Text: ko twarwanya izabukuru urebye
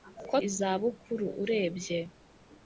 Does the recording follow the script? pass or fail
fail